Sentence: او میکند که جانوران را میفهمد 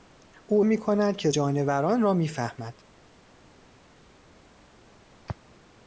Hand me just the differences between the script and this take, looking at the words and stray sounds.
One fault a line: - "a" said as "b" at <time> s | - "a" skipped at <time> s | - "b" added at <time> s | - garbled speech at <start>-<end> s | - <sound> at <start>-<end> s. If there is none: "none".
none